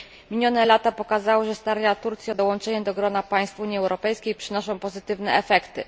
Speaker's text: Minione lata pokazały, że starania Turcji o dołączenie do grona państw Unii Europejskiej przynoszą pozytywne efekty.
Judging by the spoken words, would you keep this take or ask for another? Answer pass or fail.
pass